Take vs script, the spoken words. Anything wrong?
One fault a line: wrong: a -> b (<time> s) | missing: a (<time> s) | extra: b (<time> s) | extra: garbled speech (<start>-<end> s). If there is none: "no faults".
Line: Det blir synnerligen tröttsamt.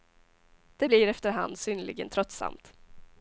extra: efter hand (1.1 s)